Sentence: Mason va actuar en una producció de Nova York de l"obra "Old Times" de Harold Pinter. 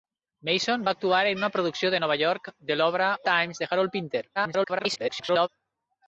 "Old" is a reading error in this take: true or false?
true